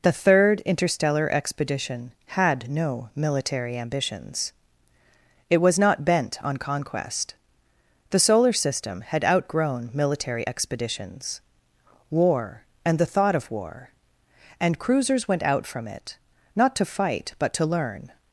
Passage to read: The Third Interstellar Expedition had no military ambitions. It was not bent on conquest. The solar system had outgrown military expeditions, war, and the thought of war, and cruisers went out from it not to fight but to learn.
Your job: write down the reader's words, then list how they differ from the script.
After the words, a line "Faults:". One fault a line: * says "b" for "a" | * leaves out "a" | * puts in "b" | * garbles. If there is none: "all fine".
The Third Interstellar Expedition had no military ambitions. It was not bent on conquest. The solar system had outgrown military expeditions, war, and the thought of war, and cruisers went out from it not to fight but to learn.
Faults:
all fine